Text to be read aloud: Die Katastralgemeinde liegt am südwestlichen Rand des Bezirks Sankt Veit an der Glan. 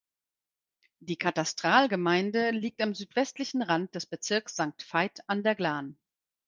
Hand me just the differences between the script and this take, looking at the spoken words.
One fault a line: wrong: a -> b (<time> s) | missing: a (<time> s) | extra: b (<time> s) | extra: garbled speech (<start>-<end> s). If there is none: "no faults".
no faults